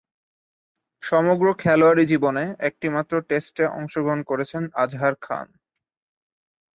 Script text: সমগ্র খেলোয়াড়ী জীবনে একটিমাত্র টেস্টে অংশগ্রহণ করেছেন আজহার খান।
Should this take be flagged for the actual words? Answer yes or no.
no